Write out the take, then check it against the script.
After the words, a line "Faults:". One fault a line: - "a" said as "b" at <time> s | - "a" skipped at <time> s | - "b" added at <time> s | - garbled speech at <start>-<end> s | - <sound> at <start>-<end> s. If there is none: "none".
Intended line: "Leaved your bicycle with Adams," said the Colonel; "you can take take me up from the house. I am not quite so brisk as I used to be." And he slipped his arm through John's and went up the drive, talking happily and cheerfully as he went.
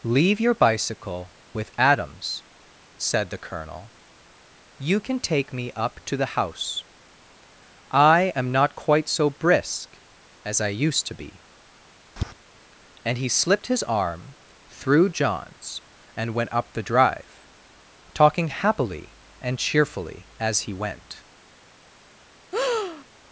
"Leave your bicycle with Adams," said the Colonel; "you can take me up to the house. I am not quite so brisk as I used to be." And he slipped his arm through John's and went up the drive, talking happily and cheerfully as he went.
Faults:
- "Leaved" said as "Leave" at 0.0 s
- "take" skipped at 5.5 s
- "from" said as "to" at 6.0 s
- tap at 12.2-12.3 s
- breath at 22.5-23.0 s